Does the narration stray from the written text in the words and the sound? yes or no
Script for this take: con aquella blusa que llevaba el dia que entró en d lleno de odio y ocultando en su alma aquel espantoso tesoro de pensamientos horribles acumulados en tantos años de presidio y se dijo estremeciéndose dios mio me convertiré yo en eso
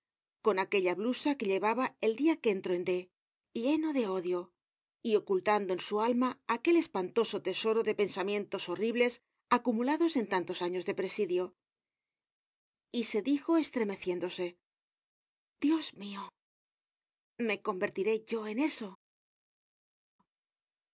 no